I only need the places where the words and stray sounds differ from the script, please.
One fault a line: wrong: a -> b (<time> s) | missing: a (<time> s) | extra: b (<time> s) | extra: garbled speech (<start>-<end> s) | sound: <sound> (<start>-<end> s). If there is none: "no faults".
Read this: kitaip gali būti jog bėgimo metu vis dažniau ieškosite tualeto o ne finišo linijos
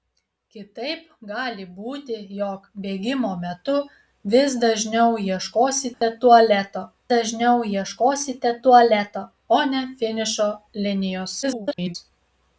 sound: dropout (5.9-6.0 s)
extra: dažniau ieškosite tualeto (7.1 s)
extra: garbled speech (11.4-12.0 s)